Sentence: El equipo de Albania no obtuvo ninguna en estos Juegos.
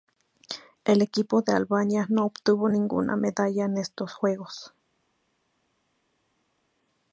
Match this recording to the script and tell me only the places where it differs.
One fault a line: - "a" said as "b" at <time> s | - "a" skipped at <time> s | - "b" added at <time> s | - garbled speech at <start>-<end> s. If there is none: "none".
- "medalla" added at 3.2 s